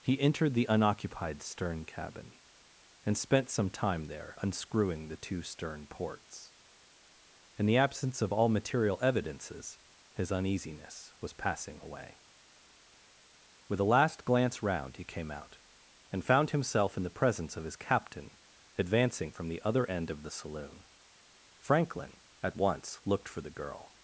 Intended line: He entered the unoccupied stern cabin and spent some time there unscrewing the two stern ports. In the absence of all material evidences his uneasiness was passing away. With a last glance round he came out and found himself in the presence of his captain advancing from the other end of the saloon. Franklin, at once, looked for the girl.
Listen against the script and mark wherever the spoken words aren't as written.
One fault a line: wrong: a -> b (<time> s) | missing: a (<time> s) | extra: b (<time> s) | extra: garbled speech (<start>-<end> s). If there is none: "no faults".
no faults